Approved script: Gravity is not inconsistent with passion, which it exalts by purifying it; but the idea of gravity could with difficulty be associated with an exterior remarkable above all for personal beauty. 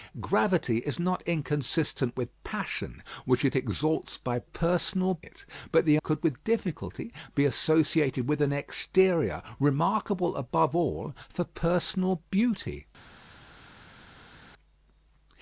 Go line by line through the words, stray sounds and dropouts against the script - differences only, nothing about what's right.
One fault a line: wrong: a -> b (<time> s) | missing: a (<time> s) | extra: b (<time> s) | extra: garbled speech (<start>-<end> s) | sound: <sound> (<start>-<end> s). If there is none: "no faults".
wrong: purifying -> personal (4.4 s)
missing: idea of gravity (6.0 s)